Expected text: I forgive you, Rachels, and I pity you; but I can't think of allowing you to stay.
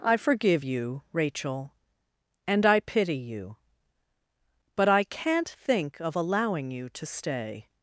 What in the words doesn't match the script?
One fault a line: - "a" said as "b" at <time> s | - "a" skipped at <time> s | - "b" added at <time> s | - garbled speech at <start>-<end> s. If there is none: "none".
- "Rachels" said as "Rachel" at 1.1 s